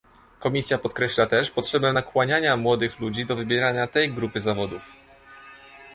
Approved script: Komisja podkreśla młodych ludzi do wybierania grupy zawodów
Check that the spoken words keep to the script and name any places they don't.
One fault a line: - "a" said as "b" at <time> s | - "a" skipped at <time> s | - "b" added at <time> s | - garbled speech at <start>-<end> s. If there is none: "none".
- "też potrzebę nakłaniania" added at 1.3 s
- "tej" added at 3.9 s